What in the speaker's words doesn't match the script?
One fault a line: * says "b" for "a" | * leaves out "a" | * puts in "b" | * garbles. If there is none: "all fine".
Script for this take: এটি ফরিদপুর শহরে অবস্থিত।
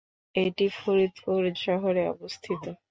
all fine